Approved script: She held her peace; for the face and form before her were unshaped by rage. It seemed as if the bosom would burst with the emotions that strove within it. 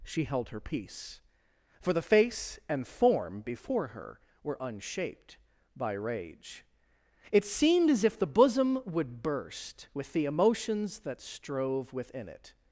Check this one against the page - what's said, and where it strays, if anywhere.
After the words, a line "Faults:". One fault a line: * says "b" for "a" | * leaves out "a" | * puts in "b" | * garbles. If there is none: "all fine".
She held her peace; for the face and form before her were unshaped by rage. It seemed as if the bosom would burst with the emotions that strove within it.
Faults:
all fine